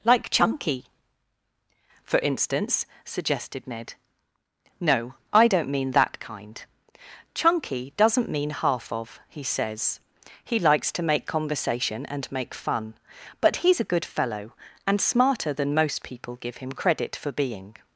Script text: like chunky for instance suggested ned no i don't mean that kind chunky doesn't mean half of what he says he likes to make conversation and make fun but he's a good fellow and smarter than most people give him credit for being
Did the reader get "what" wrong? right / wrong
wrong